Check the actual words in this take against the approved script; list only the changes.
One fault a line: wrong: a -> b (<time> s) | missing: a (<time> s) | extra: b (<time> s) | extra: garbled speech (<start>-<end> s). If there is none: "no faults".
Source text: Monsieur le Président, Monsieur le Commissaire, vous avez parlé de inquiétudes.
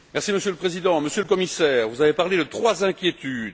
extra: trois (2.4 s)